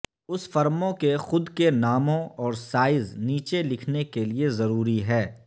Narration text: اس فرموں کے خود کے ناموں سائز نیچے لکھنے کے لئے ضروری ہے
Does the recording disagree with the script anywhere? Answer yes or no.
yes